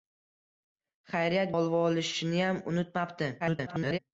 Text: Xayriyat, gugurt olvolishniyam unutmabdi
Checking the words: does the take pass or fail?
fail